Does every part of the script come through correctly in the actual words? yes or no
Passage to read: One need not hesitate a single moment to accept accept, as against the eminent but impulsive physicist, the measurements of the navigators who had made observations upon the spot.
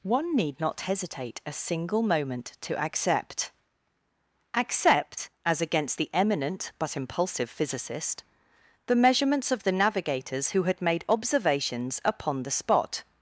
yes